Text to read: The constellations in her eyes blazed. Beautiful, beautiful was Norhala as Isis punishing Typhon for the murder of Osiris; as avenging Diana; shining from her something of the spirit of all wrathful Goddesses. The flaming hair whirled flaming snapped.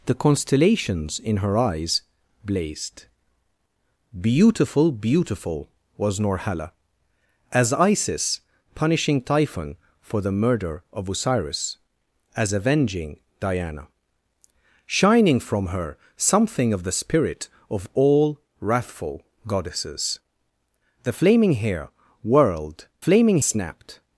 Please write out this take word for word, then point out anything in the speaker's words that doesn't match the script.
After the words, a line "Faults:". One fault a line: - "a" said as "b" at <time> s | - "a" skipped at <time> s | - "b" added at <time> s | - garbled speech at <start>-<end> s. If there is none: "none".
The constellations in her eyes blazed. Beautiful, beautiful was Norhala as Isis punishing Typhon for the murder of Osiris; as avenging Diana; shining from her something of the spirit of all wrathful Goddesses. The flaming hair whirled flaming snapped.
Faults:
none